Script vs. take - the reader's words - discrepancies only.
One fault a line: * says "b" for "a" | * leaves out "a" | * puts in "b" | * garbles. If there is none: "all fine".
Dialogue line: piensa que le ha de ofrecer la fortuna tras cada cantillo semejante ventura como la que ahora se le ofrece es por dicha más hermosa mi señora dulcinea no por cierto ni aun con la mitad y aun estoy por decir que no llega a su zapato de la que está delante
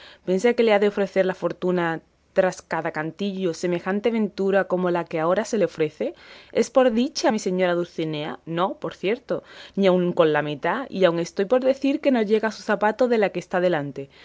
* leaves out "más hermosa"